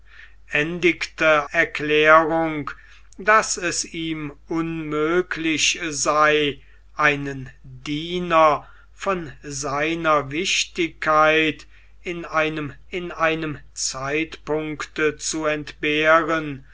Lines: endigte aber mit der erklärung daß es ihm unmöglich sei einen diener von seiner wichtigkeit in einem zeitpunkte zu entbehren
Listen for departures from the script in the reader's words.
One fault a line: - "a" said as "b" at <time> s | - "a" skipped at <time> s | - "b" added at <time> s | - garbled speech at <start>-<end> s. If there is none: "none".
- "aber mit der" skipped at 1.5 s
- "in einem" added at 12.9 s